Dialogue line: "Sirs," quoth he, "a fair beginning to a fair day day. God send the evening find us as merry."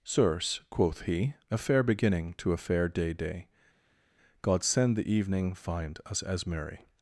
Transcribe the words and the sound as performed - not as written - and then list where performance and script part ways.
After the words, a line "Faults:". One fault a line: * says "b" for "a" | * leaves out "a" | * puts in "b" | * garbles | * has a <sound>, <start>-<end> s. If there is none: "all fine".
"Sirs," quoth he, "a fair beginning to a fair day day. God send the evening find us as merry."
Faults:
all fine